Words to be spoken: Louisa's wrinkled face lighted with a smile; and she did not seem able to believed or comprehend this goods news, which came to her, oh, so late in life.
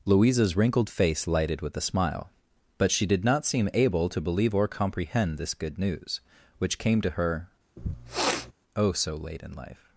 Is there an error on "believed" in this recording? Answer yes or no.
yes